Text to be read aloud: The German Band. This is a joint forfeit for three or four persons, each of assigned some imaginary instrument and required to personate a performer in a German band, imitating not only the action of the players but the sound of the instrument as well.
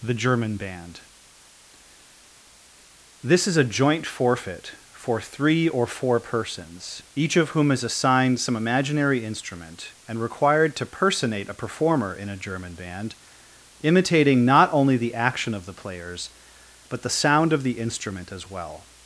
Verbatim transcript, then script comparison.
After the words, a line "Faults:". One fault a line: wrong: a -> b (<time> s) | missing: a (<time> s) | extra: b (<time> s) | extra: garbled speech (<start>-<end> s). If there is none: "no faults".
The German Band. This is a joint forfeit for three or four persons, each of whom is assigned some imaginary instrument and required to personate a performer in a German band, imitating not only the action of the players but the sound of the instrument as well.
Faults:
extra: whom is (7.5 s)